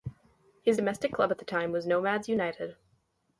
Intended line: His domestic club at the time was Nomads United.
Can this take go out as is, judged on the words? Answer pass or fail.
pass